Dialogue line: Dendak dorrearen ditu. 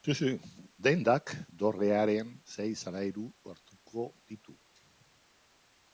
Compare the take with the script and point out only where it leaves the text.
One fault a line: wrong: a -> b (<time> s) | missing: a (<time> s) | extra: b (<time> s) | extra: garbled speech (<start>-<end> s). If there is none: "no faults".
extra: sei solairu hartuko (2.5 s)